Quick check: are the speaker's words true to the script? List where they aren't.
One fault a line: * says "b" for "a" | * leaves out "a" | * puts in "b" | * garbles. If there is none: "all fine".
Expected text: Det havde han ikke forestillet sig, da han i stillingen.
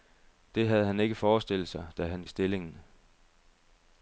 all fine